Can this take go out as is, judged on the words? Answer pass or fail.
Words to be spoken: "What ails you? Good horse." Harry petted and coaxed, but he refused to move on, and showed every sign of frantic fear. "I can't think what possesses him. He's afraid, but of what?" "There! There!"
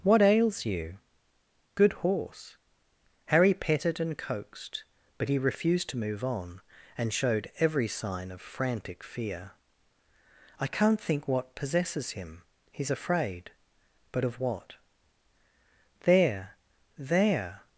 pass